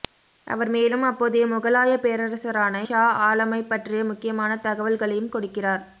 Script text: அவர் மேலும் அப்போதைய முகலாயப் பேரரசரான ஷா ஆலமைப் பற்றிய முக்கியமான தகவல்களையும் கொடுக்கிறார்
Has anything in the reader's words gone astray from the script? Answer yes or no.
no